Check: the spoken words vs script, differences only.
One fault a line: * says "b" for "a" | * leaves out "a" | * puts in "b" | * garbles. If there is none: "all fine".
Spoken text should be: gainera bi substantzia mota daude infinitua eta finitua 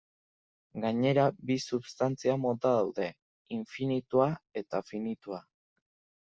all fine